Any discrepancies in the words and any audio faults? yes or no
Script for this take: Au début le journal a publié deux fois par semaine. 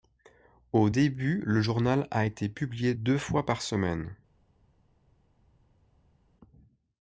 yes